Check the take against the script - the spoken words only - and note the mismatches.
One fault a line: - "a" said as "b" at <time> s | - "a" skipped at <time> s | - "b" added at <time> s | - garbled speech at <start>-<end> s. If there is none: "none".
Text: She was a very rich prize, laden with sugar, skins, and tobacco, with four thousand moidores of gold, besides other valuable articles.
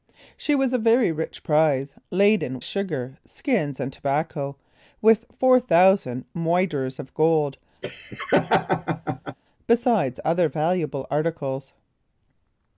- "with" skipped at 2.6 s